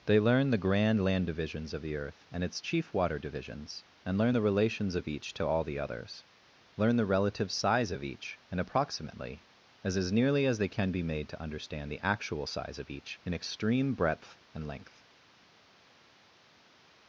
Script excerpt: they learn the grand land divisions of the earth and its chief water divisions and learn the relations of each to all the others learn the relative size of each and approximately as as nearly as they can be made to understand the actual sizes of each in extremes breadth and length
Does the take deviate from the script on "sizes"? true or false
true